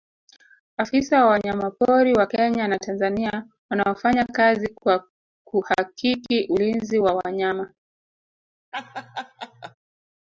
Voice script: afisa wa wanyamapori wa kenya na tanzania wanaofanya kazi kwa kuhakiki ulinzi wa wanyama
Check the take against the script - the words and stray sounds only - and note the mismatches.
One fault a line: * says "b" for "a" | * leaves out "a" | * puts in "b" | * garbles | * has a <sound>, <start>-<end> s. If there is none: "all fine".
* has a laugh, 8.7-9.7 s